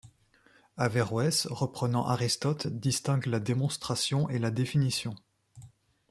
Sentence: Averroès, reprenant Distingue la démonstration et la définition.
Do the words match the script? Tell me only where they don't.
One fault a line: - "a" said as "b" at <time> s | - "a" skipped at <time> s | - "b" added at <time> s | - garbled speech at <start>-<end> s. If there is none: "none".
- "Aristote" added at 2.1 s